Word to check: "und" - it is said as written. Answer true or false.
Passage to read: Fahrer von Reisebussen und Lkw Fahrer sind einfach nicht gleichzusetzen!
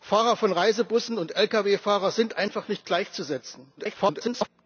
true